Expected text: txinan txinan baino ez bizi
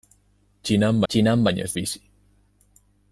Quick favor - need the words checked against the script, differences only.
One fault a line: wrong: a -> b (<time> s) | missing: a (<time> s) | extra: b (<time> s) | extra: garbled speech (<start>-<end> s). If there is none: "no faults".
no faults